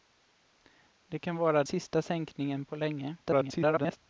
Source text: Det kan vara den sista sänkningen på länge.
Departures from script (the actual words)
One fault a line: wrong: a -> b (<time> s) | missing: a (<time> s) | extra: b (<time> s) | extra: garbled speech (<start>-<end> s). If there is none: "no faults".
missing: den (1.6 s)
extra: garbled speech (3.2-4.0 s)